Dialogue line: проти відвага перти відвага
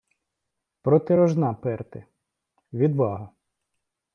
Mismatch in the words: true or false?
true